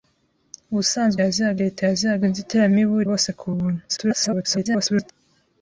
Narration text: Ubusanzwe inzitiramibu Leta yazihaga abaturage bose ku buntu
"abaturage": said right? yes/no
no